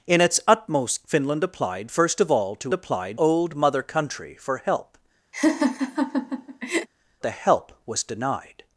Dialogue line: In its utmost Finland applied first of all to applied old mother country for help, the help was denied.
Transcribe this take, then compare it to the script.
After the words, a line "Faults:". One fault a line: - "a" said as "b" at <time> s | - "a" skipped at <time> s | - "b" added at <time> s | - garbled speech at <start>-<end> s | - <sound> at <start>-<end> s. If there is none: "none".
In its utmost Finland applied first of all to applied old mother country for help, the help was denied.
Faults:
- laugh at 5.3-6.9 s